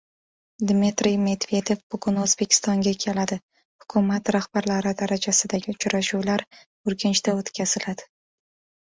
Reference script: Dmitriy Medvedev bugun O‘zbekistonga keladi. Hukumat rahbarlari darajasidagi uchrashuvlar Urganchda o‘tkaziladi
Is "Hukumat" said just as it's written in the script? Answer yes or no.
yes